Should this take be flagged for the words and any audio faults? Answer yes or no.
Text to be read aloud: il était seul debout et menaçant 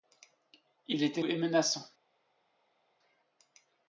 yes